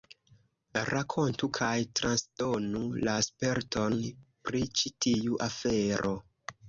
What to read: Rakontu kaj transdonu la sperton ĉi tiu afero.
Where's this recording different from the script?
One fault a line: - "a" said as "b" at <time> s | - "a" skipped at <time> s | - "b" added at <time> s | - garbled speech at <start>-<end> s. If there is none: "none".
- "pri" added at 4.5 s